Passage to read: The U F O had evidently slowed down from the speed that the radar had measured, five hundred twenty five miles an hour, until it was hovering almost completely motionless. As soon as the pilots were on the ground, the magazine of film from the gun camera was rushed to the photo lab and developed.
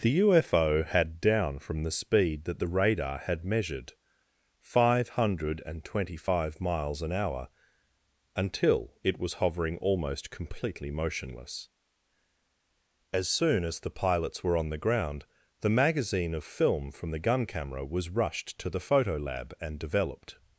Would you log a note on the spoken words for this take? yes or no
yes